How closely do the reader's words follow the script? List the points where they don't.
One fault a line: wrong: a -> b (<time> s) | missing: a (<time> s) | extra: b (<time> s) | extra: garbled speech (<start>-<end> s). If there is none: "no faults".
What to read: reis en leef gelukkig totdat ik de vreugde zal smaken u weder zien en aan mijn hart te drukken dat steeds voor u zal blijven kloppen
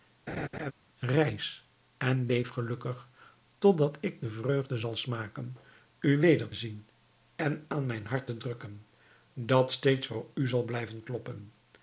no faults